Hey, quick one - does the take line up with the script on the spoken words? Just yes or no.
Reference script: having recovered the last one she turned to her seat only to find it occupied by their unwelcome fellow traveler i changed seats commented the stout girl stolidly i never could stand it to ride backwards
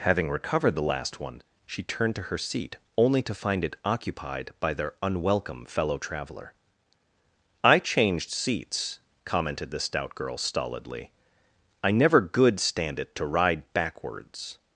no